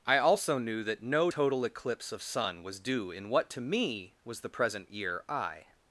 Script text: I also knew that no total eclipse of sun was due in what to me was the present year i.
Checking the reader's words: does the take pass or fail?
pass